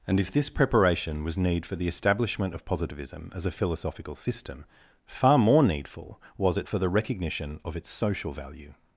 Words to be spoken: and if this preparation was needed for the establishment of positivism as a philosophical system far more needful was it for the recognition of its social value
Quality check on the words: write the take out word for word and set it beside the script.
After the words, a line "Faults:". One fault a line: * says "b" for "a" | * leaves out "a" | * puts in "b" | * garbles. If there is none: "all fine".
and if this preparation was need for the establishment of positivism as a philosophical system far more needful was it for the recognition of its social value
Faults:
* says "need" for "needed"